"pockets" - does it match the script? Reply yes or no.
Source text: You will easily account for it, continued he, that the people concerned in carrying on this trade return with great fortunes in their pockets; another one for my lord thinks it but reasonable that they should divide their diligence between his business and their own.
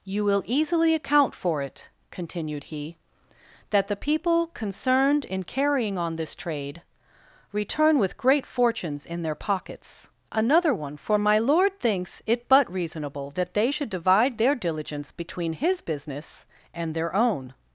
yes